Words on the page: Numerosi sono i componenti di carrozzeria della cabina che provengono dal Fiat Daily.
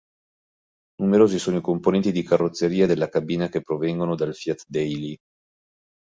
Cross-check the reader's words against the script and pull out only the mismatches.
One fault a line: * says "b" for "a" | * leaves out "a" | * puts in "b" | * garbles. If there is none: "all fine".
all fine